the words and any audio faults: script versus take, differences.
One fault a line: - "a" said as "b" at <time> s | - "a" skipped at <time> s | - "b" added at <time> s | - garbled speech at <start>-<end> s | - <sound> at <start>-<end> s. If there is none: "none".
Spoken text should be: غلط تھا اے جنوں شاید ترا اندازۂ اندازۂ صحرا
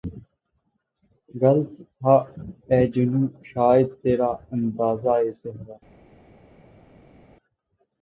- "اندازۂ" skipped at 5.3 s